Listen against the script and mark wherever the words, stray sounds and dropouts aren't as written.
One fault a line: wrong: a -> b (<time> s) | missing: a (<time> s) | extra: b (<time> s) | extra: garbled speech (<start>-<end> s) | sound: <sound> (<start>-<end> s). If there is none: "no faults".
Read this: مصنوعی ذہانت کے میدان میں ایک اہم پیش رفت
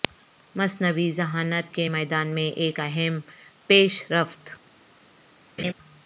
sound: laugh (5.6-5.7 s)